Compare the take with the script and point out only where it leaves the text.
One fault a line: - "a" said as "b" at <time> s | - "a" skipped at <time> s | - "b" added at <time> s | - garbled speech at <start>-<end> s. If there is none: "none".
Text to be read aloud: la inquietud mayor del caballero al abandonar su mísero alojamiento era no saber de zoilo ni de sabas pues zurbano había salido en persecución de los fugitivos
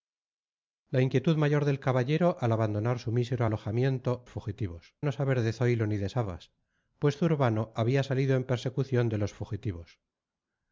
- "era" said as "fugitivos" at 4.3 s